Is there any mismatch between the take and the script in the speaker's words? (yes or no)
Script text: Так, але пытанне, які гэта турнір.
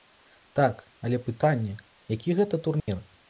no